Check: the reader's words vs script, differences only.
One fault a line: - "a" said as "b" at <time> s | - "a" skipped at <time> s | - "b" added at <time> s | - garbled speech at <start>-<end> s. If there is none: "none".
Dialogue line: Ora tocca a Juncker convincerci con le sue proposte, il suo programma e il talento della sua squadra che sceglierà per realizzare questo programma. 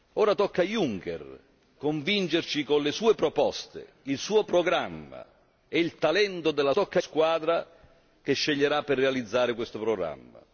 - "sua" said as "tocca" at 6.7 s